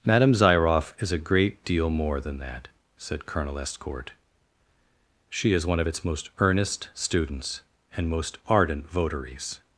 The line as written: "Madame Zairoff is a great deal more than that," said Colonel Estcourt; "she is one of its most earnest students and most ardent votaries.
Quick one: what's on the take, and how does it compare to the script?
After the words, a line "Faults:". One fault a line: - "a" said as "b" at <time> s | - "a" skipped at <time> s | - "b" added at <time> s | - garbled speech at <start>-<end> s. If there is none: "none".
"Madame Zairoff is a great deal more than that," said Colonel Estcourt; "she is one of its most earnest students and most ardent votaries.
Faults:
none